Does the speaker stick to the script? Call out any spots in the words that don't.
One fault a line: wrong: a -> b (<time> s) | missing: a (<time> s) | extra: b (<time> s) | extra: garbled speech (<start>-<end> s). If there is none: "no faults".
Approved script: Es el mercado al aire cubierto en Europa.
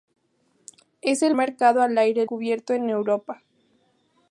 no faults